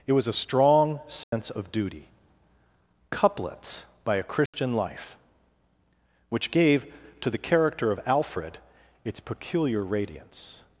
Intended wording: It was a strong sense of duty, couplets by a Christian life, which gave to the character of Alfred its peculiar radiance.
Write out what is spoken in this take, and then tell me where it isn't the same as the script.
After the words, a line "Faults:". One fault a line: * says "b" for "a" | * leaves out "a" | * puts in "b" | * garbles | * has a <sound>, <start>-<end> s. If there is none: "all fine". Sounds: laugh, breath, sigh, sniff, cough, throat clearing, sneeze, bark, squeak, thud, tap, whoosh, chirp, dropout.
It was a strong sense of duty, couplets by a Christian life, which gave to the character of Alfred its peculiar radiance.
Faults:
* has a dropout, 1.2-1.3 s
* has a dropout, 4.5-4.5 s